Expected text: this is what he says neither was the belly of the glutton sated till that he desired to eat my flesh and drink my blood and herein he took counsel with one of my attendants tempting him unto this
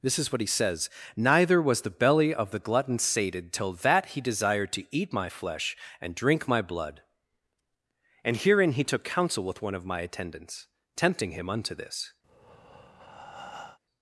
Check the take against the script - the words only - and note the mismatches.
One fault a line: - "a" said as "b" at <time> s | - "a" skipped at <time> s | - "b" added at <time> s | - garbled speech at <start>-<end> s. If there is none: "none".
none